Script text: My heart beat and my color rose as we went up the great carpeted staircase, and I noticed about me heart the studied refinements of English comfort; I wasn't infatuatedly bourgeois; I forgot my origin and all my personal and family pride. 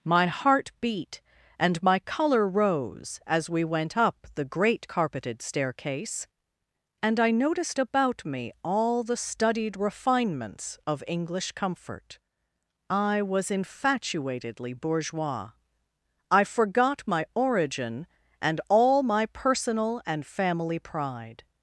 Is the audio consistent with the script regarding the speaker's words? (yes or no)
no